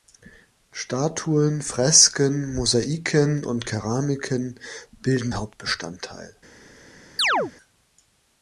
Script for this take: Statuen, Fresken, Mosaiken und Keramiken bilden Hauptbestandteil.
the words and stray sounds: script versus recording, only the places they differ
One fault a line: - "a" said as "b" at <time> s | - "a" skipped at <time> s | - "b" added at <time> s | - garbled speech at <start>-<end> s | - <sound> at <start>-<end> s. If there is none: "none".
- chirp at 7.2-7.5 s